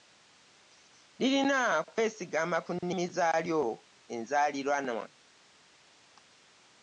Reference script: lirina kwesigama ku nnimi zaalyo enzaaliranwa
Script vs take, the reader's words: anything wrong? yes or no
no